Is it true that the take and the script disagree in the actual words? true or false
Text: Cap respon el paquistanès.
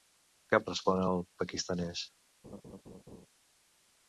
false